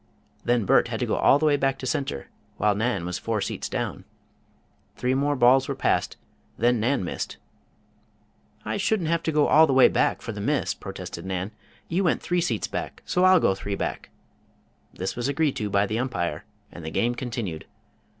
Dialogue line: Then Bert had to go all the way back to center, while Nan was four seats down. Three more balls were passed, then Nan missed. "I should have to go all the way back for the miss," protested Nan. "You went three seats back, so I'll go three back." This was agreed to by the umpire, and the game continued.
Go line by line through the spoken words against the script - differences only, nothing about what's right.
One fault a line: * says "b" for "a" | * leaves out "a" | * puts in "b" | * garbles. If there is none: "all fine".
* says "shouldn't" for "should"